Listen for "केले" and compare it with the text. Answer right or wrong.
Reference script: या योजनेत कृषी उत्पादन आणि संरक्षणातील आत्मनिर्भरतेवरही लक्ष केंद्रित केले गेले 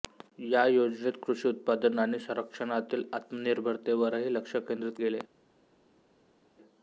wrong